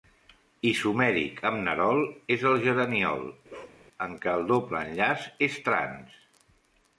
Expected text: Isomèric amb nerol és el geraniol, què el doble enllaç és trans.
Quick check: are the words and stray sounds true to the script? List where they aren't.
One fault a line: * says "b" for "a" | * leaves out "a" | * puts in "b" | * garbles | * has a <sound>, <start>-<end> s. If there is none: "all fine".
* has a bark, 3.5-3.8 s
* puts in "en"